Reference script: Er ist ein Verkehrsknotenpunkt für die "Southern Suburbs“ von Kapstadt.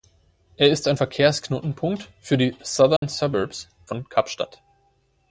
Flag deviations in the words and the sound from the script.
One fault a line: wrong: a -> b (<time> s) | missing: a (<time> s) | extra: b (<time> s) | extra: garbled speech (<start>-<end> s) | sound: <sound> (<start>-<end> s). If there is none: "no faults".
sound: dropout (3.0-3.0 s)